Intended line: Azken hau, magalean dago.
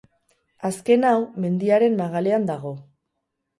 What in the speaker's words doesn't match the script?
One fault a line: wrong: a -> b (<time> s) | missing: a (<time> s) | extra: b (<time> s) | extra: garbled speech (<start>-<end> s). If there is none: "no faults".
extra: mendiaren (1.4 s)